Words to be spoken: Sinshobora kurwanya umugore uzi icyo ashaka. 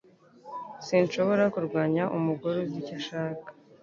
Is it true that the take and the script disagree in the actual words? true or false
false